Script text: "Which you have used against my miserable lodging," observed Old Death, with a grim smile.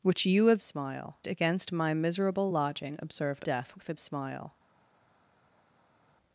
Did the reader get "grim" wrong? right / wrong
wrong